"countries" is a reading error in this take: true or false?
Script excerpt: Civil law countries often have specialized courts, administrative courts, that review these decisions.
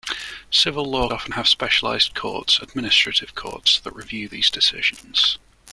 true